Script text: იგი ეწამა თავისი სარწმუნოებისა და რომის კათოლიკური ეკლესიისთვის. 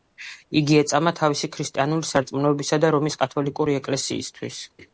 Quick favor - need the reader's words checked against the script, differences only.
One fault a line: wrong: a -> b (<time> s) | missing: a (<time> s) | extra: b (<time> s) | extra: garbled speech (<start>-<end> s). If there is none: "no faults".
extra: ქრისტიანული (1.6 s)